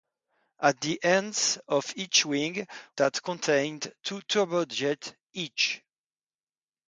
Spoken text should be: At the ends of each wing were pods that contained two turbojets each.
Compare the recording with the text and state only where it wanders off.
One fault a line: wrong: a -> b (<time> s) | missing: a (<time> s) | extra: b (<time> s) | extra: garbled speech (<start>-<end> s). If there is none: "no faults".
missing: were pods (2.6 s)